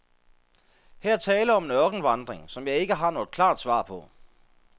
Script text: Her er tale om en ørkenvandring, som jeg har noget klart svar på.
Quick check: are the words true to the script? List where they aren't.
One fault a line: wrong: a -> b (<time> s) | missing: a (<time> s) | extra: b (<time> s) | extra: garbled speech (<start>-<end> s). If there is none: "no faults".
extra: ikke (2.8 s)